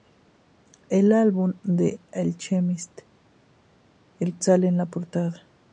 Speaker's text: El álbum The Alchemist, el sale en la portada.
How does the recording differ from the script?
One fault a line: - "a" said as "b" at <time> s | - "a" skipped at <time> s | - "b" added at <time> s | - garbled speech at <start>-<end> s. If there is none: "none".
none